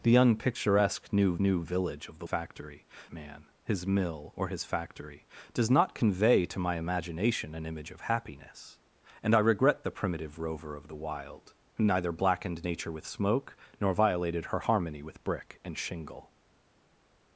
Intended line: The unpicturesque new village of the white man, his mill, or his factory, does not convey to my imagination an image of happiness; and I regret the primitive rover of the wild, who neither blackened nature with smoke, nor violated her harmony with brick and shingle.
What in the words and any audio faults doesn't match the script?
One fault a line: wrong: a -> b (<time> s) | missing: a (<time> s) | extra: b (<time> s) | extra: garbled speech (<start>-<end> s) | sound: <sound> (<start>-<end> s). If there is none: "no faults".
extra: new (1.4 s)
wrong: white -> factory (2.2 s)